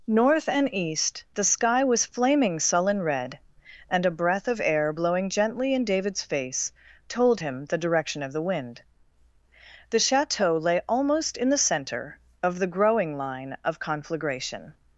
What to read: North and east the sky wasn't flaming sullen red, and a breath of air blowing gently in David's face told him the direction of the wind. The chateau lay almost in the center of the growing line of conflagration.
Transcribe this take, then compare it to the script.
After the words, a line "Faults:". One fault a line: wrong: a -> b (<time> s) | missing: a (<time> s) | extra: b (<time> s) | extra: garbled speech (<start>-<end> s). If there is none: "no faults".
North and east the sky was flaming sullen red, and a breath of air blowing gently in David's face told him the direction of the wind. The chateau lay almost in the center of the growing line of conflagration.
Faults:
wrong: wasn't -> was (1.8 s)